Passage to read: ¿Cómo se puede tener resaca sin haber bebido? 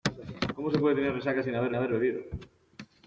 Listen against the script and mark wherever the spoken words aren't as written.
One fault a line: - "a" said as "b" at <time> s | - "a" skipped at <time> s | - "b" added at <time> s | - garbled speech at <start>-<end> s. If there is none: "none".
- "haber" added at 1.7 s